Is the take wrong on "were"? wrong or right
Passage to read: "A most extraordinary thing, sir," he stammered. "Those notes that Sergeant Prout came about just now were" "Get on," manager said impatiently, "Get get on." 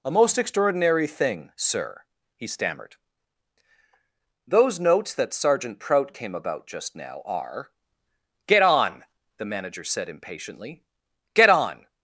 wrong